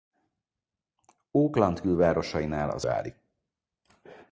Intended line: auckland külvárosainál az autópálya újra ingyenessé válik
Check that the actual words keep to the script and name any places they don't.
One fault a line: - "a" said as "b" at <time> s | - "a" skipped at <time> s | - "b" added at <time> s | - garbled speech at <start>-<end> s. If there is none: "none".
- "autópálya újra ingyenessé" skipped at 2.8 s